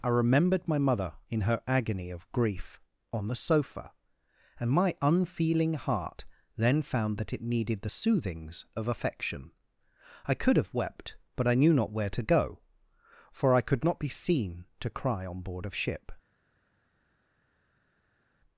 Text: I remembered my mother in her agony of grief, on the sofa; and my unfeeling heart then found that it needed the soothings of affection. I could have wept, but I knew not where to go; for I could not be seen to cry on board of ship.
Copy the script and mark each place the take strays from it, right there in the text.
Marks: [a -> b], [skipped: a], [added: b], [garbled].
I remembered my mother in her agony of grief, on the sofa; and my unfeeling heart then found that it needed the soothings of affection. I could have wept, but I knew not where to go; for I could not be seen to cry on board of ship.